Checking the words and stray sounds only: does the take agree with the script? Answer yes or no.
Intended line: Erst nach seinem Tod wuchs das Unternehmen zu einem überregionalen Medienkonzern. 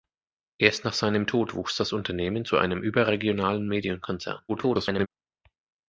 no